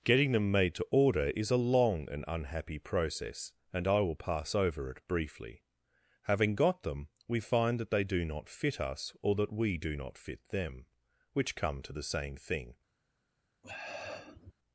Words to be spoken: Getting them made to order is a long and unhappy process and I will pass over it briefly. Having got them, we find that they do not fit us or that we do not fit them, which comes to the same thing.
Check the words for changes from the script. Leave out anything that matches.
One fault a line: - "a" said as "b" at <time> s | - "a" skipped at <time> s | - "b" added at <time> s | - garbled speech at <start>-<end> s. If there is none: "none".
- "comes" said as "come" at 11.6 s